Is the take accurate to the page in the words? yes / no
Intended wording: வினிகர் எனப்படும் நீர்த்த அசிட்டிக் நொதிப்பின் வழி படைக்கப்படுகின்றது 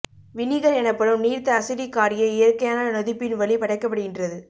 no